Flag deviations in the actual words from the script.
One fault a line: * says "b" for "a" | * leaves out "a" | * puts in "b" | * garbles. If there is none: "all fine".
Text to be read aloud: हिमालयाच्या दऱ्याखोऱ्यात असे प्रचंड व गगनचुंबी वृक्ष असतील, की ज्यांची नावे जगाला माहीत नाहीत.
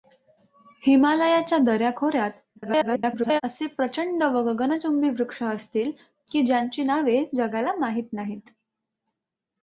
* garbles